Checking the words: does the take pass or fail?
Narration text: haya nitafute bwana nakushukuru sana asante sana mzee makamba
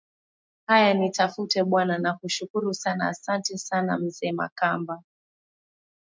pass